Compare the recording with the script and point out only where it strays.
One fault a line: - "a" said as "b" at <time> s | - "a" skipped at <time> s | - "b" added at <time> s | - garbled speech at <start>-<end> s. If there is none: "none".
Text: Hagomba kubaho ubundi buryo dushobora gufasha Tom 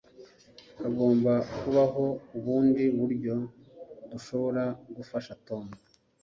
none